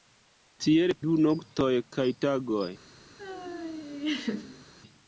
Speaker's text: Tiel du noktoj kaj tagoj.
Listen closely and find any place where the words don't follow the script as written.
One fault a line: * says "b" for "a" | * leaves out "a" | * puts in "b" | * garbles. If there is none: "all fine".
all fine